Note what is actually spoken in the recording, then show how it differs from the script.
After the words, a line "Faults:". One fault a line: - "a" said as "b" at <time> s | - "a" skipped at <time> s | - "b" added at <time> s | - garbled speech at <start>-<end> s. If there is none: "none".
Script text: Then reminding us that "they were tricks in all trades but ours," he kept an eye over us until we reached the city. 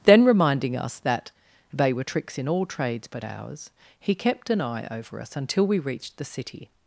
Then reminding us that "they were tricks in all trades but ours," he kept an eye over us until we reached the city.
Faults:
none